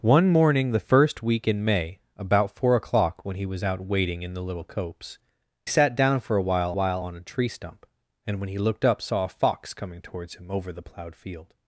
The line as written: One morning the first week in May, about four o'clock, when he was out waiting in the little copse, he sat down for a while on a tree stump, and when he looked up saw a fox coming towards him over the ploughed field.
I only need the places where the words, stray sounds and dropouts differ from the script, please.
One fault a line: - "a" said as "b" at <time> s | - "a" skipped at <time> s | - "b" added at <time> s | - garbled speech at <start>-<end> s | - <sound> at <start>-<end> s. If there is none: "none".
- "he" skipped at 5.2 s
- "while" added at 6.7 s